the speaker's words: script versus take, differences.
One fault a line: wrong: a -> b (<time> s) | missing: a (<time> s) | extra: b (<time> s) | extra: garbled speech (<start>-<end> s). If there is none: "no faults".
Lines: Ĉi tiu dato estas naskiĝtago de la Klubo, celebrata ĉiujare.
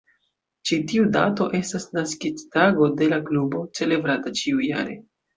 no faults